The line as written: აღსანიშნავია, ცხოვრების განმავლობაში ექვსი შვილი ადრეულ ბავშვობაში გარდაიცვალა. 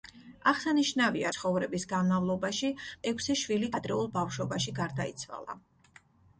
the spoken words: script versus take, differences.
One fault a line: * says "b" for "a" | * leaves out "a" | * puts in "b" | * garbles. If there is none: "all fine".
all fine